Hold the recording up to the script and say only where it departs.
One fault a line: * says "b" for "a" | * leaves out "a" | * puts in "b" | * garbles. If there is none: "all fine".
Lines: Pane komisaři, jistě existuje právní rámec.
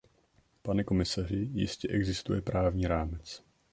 all fine